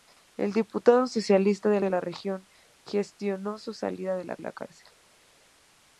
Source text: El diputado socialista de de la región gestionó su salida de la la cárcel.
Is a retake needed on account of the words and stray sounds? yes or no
no